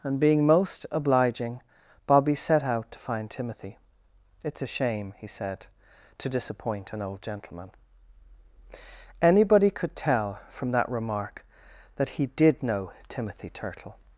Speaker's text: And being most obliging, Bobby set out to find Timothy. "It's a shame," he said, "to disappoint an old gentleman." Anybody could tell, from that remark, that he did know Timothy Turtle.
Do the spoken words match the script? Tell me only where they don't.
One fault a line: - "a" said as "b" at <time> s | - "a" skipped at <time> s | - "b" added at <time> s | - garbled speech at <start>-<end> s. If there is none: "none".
none